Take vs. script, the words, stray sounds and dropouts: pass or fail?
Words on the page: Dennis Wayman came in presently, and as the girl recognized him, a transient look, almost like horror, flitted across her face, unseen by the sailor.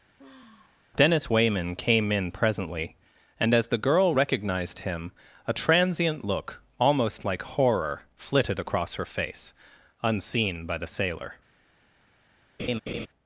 fail